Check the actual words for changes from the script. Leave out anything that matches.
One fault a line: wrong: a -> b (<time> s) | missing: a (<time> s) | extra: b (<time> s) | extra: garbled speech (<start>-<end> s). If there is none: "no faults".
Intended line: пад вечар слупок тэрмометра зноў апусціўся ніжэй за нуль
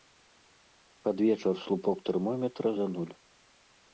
missing: зноў апусціўся ніжэй (2.7 s)